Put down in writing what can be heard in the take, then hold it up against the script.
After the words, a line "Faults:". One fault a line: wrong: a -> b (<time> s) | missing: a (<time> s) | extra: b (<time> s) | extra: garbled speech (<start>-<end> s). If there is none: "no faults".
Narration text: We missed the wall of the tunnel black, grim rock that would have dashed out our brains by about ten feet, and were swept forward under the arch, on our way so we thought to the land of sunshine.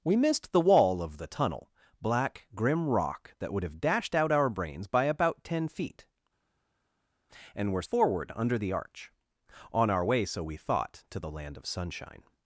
We missed the wall of the tunnel black, grim rock that would have dashed out our brains by about ten feet, and were forward under the arch, on our way so we thought to the land of sunshine.
Faults:
missing: swept (7.8 s)